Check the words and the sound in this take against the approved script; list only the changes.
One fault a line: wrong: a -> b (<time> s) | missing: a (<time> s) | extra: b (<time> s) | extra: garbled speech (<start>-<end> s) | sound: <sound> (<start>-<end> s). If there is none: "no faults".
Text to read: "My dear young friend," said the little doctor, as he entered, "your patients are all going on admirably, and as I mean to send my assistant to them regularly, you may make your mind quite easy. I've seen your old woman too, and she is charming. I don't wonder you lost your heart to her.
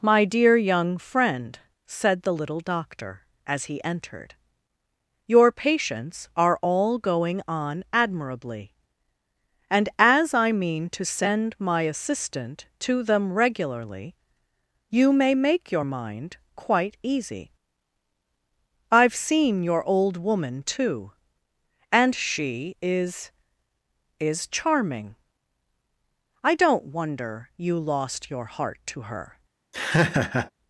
extra: is (24.2 s)
sound: laugh (29.7-30.5 s)